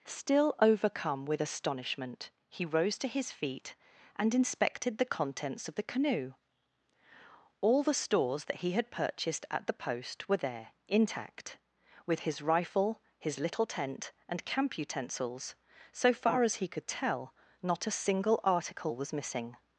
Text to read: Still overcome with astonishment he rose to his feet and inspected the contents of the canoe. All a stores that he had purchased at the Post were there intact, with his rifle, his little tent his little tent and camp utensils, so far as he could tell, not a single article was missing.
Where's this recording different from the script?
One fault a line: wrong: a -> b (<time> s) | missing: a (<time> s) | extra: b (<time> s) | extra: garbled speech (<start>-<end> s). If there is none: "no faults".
wrong: a -> the (7.8 s)
missing: his little tent (14.1 s)